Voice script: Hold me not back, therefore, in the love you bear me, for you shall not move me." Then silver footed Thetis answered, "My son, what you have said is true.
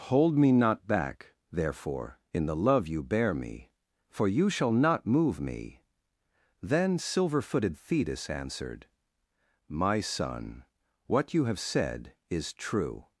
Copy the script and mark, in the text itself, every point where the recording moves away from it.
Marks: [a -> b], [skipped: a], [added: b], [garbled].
Hold me not back, therefore, in the love you bear me, for you shall not move me." Then silver footed Thetis answered, "My son, what you have said is true.